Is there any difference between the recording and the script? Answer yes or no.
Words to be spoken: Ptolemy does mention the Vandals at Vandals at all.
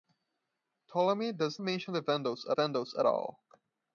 no